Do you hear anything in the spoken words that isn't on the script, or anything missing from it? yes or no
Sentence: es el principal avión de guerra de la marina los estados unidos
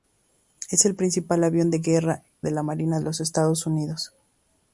no